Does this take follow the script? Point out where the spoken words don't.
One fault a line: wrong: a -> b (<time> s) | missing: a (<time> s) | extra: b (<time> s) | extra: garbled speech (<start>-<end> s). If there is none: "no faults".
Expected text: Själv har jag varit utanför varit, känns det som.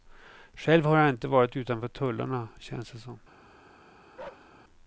extra: inte (1.1 s)
wrong: varit -> tullarna (1.9 s)